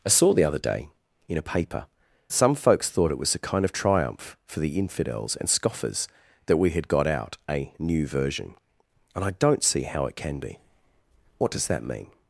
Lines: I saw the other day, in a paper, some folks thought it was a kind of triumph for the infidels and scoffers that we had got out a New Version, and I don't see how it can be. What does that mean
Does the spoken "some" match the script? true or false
true